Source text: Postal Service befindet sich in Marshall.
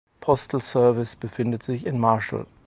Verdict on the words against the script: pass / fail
pass